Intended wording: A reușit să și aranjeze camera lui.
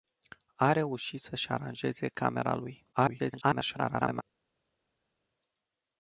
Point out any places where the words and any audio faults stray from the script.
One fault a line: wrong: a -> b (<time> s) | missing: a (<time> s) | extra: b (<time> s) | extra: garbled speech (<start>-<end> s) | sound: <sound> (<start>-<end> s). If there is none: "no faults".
extra: garbled speech (2.9-4.2 s)